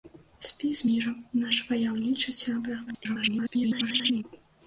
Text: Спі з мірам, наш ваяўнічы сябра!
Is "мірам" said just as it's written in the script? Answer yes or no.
yes